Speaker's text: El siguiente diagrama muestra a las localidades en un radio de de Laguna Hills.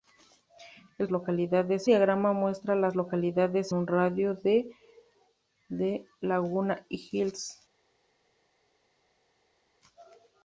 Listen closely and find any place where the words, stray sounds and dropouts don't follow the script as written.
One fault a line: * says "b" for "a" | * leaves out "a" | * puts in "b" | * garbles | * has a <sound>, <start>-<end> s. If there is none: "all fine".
* says "localidades" for "siguiente"
* leaves out "en"